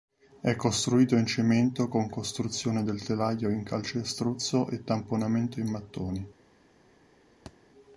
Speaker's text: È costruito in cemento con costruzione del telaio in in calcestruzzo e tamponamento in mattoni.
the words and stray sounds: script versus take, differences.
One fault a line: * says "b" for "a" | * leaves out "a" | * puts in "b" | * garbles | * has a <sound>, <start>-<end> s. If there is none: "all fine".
* leaves out "in"
* has a thud, 7.5-7.6 s